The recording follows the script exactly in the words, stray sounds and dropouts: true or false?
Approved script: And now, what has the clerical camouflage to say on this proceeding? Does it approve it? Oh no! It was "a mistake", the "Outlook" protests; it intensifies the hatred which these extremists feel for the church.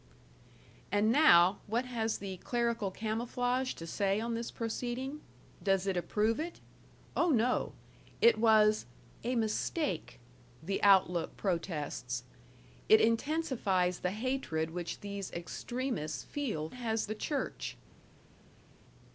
false